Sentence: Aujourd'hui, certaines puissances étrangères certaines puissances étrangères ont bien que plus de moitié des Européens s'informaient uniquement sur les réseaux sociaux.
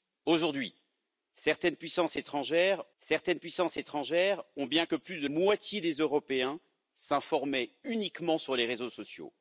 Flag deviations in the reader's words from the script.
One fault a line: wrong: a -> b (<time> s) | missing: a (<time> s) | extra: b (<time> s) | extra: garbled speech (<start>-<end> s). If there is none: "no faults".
no faults